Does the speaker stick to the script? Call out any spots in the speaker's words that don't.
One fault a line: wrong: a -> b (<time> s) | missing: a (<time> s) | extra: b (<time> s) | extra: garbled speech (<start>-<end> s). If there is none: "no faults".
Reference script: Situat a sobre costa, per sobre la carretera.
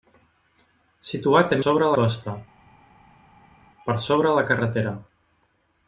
no faults